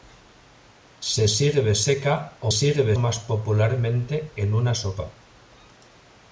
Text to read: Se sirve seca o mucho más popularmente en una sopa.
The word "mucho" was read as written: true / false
false